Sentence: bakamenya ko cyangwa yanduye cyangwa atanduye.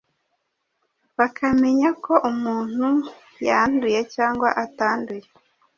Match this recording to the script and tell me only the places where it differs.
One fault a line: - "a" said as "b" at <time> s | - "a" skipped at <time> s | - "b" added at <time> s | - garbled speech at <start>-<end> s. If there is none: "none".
- "cyangwa" said as "umuntu" at 2.3 s